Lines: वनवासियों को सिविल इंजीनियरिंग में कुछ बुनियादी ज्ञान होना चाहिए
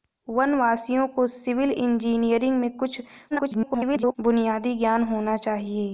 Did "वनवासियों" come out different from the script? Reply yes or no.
no